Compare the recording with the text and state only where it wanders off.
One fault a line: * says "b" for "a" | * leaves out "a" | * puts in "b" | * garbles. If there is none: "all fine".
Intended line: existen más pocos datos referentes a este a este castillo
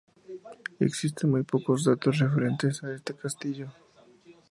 * says "muy" for "más"
* leaves out "a este"